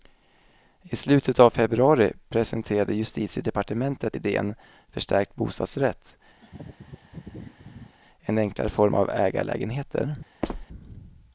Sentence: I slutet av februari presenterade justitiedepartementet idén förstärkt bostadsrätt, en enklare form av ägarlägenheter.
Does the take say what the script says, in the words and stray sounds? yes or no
no